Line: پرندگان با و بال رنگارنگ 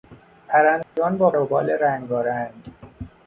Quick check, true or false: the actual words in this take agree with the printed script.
true